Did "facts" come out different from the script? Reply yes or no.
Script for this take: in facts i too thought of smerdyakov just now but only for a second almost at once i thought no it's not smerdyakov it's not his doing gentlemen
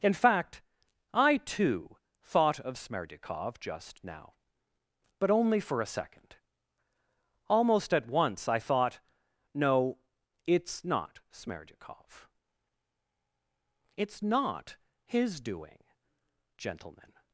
yes